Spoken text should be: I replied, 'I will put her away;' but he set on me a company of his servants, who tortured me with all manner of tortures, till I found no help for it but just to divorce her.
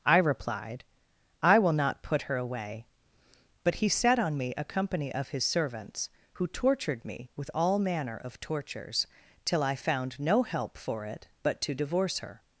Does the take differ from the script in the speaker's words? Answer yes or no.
yes